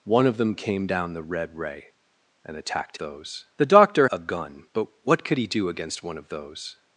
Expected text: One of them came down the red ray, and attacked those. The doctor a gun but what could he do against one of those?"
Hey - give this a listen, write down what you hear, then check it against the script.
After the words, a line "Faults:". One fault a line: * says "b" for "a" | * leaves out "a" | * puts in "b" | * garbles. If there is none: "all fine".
One of them came down the red ray, and attacked those. The doctor a gun but what could he do against one of those?"
Faults:
all fine